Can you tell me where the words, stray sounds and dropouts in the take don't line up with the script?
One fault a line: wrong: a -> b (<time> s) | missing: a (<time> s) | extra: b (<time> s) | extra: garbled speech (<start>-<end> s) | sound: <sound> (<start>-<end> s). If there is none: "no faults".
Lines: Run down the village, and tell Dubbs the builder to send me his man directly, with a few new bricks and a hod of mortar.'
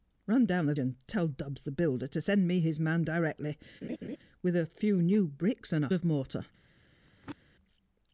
missing: village (0.7 s)
sound: laugh (3.8-4.2 s)
missing: hod (5.9 s)
sound: throat clearing (7.0-7.4 s)